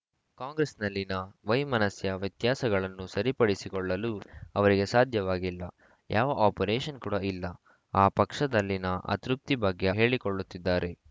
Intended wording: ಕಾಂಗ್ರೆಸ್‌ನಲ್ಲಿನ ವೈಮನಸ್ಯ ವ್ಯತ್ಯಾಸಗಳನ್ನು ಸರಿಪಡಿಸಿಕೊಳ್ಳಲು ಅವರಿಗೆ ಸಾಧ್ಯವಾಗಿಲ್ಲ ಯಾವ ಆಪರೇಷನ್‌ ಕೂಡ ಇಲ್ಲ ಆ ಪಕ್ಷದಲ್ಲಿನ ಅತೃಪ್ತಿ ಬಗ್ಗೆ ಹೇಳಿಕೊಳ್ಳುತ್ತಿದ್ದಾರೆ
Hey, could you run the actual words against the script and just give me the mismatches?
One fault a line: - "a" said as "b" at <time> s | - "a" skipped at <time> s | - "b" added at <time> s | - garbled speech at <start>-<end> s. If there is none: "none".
none